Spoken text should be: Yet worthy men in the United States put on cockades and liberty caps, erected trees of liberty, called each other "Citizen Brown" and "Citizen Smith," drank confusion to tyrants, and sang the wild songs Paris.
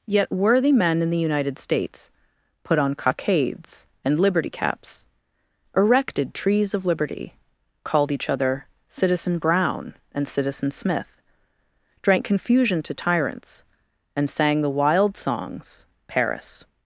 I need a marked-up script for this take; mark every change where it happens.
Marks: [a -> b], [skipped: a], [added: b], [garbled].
Yet worthy men in the United States put on cockades and liberty caps, erected trees of liberty, called each other "Citizen Brown" and "Citizen Smith," drank confusion to tyrants, and sang the wild songs Paris.